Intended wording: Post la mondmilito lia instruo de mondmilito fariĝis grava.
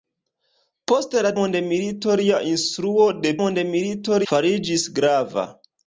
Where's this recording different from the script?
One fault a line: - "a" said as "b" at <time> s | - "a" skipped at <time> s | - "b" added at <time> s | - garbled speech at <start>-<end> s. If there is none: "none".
none